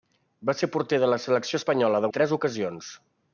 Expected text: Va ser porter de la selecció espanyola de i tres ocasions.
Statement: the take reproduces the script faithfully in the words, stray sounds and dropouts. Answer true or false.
true